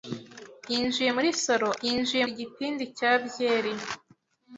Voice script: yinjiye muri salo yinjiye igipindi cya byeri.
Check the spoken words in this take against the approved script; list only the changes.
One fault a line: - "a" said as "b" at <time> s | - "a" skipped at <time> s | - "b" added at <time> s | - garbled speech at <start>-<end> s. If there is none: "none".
none